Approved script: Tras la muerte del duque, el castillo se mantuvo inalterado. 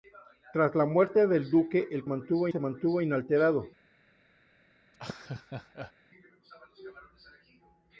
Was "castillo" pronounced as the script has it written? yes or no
no